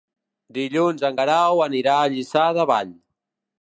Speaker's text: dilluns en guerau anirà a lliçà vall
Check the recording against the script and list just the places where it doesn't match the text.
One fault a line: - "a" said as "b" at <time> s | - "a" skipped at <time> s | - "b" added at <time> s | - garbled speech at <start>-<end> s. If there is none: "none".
- "de" added at 2.6 s